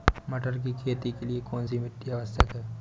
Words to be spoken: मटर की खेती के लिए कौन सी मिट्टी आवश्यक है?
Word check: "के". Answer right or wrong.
right